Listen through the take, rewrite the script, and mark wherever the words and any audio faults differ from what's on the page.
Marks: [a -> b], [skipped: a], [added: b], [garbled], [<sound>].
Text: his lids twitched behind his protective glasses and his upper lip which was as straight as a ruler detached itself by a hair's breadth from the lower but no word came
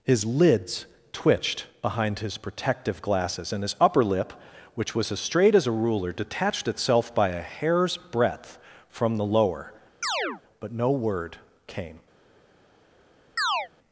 his lids twitched behind his protective glasses and his upper lip which was as straight as a ruler detached itself by a hair's breadth from the lower [chirp] but no word came [chirp]